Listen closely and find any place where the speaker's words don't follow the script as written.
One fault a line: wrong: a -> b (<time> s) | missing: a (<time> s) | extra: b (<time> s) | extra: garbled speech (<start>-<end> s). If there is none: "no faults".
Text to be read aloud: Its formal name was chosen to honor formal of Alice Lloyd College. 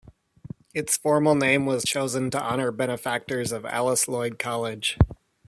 wrong: formal -> benefactors (2.7 s)